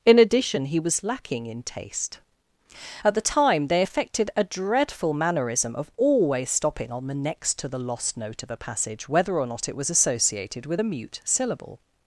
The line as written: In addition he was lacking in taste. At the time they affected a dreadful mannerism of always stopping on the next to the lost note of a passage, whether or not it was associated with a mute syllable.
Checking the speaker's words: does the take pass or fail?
pass